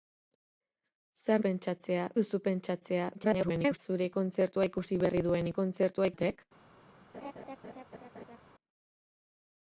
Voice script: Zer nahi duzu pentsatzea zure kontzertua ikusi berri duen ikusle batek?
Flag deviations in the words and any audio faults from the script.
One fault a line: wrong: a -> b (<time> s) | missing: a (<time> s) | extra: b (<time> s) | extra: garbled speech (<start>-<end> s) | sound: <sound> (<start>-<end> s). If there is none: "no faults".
wrong: nahi -> pentsatzea (1.4 s)
extra: garbled speech (3.1-3.8 s)
wrong: ikusle -> kontzertua (5.6 s)
sound: laugh (7.1-8.4 s)